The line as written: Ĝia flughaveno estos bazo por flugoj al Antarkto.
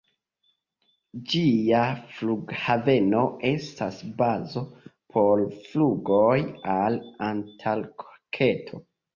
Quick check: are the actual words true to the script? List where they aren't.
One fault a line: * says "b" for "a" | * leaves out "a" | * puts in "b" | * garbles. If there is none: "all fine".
* says "estas" for "estos"